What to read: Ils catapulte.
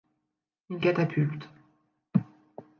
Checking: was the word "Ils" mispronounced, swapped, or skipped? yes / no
no